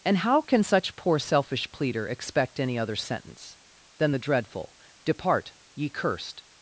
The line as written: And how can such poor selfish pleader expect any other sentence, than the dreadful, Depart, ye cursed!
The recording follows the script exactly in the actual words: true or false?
true